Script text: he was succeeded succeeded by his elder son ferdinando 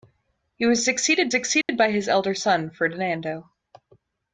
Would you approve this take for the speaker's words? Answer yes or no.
yes